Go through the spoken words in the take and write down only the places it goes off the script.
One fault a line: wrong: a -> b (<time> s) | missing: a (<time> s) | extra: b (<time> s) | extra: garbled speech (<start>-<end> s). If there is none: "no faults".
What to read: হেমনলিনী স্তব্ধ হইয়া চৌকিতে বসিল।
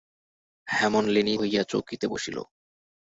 missing: স্তব্ধ (1.4 s)